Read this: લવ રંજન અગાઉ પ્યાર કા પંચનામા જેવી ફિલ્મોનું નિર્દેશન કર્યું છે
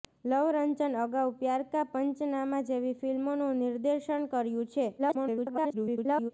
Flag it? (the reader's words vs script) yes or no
yes